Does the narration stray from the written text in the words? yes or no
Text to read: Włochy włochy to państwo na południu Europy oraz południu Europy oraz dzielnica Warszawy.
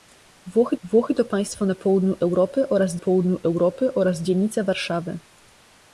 no